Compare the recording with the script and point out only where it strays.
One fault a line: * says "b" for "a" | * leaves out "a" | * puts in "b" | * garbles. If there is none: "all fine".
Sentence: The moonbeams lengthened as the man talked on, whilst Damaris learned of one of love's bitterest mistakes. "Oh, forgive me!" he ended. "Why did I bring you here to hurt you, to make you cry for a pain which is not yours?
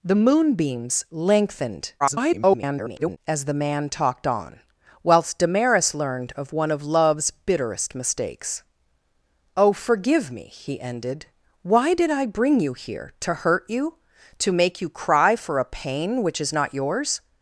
* garbles